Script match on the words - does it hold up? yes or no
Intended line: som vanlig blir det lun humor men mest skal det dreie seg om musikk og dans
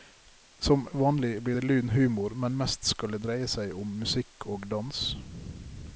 yes